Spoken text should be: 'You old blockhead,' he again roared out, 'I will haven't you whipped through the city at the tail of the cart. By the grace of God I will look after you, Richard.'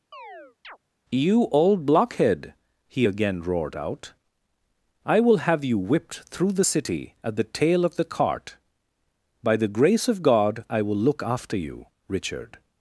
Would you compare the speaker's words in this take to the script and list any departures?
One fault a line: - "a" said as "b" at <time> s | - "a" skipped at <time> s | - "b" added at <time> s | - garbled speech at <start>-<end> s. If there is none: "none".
- "haven't" said as "have" at 5.4 s